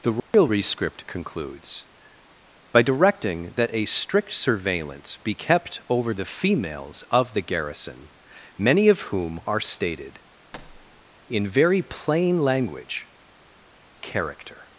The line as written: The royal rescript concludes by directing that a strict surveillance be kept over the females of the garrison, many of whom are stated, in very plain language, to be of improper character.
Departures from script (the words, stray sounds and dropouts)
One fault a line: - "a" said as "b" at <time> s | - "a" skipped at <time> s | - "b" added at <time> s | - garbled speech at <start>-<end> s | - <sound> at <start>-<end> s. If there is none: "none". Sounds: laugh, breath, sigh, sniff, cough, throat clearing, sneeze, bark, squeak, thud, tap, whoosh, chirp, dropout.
- dropout at 0.2-0.3 s
- thud at 10.5-11.0 s
- "to be of improper" skipped at 13.1 s